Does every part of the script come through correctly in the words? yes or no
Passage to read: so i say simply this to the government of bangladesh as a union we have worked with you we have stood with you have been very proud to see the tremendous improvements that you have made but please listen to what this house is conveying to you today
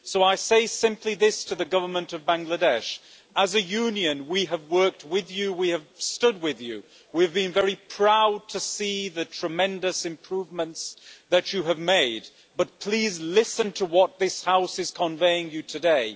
no